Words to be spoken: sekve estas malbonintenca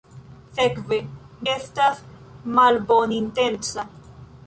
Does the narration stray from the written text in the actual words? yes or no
no